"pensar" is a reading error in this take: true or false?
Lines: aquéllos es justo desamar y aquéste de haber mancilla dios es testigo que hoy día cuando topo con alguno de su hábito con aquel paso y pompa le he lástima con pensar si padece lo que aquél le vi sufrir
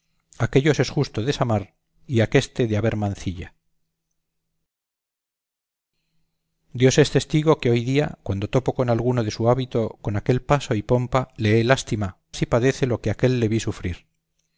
true